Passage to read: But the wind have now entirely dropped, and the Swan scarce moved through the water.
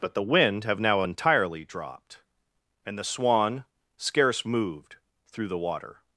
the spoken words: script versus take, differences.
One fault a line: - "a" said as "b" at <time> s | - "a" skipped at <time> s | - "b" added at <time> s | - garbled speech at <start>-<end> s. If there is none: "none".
none